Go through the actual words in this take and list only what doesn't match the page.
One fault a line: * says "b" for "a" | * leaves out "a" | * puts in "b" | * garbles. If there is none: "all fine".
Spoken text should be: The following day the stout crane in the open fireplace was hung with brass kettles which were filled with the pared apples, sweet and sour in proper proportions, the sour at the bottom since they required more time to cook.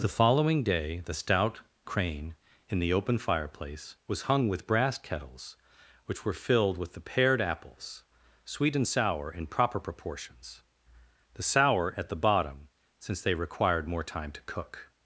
all fine